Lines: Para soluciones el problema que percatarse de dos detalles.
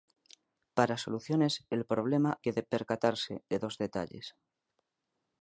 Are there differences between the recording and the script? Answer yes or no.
no